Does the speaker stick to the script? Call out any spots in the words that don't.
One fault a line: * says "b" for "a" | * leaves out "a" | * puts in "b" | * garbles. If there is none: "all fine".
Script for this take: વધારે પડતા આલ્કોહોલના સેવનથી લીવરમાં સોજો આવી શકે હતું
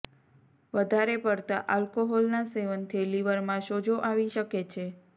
* says "છે" for "હતું"